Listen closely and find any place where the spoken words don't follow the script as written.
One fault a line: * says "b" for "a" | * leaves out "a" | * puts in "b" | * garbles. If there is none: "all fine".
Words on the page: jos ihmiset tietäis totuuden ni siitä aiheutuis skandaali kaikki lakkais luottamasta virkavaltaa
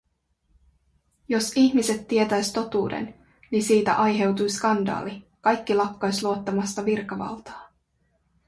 all fine